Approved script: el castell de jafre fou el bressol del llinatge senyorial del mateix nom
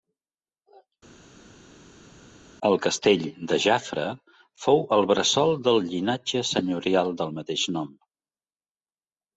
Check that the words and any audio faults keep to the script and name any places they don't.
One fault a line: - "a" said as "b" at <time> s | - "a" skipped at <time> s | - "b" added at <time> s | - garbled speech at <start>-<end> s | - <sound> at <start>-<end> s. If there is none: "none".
none